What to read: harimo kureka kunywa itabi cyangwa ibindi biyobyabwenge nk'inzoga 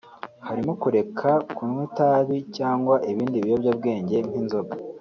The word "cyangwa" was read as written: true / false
true